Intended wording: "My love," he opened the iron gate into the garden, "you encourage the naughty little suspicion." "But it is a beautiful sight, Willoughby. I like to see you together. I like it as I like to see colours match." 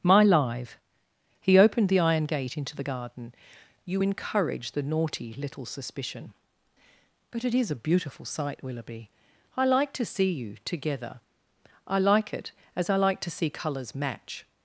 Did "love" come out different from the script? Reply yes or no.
yes